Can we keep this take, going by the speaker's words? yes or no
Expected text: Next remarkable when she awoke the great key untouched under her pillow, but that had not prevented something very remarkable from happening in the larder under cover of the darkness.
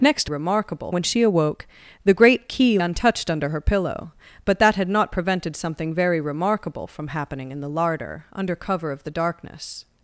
yes